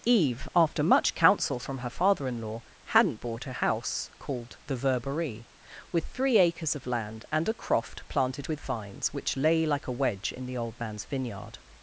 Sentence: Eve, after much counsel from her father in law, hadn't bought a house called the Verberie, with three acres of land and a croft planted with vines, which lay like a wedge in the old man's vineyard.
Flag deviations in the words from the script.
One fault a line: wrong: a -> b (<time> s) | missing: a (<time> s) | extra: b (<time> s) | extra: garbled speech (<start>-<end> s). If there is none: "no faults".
no faults